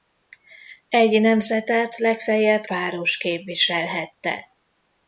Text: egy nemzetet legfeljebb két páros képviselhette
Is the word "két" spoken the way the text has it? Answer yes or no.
no